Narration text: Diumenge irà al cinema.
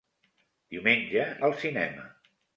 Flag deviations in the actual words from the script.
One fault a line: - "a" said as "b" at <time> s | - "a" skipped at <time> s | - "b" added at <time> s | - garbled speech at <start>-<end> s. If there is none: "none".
- "irà" skipped at 1.3 s